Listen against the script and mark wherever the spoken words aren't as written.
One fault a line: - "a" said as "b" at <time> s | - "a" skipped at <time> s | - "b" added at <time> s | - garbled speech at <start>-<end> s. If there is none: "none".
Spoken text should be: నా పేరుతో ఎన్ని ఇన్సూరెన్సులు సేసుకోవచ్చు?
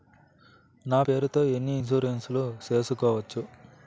none